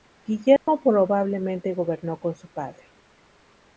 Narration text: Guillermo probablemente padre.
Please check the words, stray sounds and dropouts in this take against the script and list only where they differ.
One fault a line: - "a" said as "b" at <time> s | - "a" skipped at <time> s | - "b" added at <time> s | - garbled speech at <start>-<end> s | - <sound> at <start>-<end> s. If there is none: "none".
- dropout at 0.6-0.7 s
- "gobernó con su" added at 1.8 s